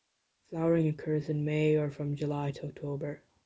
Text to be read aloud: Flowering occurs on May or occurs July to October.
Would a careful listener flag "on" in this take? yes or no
yes